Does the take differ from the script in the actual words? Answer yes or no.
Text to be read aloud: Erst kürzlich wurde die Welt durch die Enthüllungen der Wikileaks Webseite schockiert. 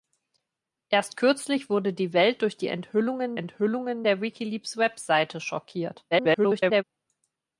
yes